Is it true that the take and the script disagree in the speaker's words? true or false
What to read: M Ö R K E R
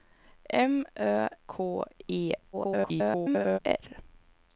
true